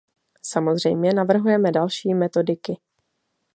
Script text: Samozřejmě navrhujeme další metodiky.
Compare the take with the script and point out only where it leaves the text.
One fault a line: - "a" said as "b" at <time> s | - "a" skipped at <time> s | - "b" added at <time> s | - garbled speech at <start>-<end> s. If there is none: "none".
none